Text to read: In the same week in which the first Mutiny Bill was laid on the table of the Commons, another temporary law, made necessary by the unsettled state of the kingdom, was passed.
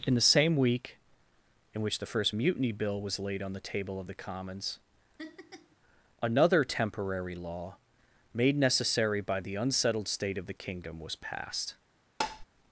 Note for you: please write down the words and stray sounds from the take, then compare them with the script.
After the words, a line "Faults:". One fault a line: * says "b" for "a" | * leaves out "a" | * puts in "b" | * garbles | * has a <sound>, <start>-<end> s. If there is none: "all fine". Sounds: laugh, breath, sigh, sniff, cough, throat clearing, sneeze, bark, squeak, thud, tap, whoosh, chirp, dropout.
In the same week in which the first Mutiny Bill was laid on the table of the Commons, another temporary law, made necessary by the unsettled state of the kingdom, was passed.
Faults:
* has a laugh, 5.2-5.8 s
* has a tap, 12.2-12.5 s